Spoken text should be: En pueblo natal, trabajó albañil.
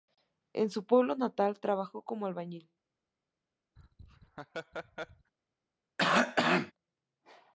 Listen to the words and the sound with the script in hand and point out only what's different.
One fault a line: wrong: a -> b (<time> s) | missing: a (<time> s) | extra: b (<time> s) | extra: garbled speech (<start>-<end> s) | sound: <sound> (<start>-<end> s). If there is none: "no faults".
extra: su (0.7 s)
extra: como (2.0 s)
sound: laugh (3.8-5.3 s)
sound: cough (6.0-6.7 s)